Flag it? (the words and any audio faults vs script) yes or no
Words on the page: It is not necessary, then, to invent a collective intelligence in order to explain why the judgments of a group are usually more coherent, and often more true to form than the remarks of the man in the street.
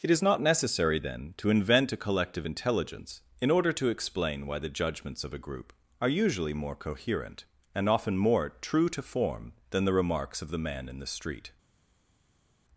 no